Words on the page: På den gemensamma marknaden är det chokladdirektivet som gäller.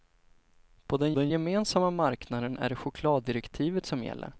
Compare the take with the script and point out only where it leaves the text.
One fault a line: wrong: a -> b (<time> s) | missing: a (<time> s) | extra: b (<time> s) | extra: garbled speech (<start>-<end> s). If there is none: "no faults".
extra: den (1.1 s)